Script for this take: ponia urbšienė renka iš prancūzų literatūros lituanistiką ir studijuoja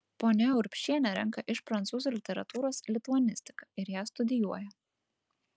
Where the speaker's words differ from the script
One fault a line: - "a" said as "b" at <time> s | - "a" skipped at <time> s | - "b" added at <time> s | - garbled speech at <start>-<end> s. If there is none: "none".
- "ją" added at 4.0 s